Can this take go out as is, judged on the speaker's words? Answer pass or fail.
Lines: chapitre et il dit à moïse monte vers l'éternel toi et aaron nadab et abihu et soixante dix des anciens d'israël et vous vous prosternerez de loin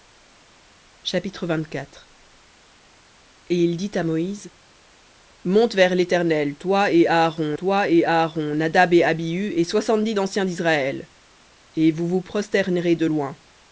fail